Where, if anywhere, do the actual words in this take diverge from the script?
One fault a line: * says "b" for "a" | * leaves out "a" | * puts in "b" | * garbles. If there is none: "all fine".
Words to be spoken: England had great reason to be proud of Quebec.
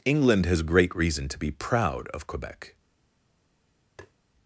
* says "has" for "had"